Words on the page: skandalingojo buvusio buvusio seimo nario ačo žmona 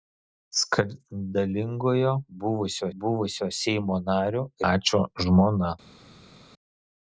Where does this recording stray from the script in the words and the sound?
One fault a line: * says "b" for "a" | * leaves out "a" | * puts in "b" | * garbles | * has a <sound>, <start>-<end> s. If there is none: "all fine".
all fine